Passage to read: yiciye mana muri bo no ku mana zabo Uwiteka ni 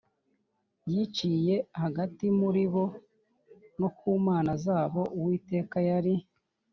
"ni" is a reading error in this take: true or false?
true